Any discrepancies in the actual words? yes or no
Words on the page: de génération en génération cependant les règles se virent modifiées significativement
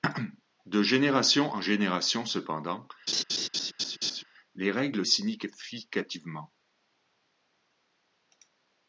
yes